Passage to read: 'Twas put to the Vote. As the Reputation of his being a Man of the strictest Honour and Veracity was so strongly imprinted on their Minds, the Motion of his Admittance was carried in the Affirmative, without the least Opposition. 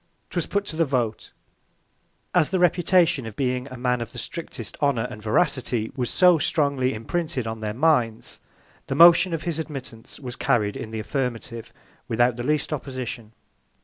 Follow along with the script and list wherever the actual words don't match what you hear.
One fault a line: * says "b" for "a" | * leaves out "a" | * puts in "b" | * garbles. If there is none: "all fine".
* leaves out "his"